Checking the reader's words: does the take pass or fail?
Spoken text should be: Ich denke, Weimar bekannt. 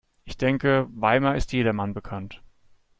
fail